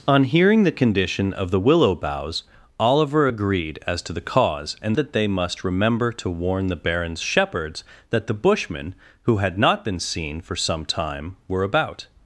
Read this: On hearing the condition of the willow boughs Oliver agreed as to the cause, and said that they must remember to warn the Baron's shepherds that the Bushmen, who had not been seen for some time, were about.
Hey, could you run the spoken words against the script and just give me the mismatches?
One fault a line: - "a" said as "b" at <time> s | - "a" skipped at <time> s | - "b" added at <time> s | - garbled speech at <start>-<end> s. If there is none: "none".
- "said" skipped at 5.0 s